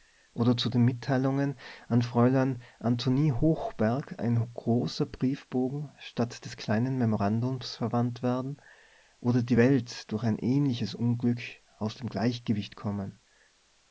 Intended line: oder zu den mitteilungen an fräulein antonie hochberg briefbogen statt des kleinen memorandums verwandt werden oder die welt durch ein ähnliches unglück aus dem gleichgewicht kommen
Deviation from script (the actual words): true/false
true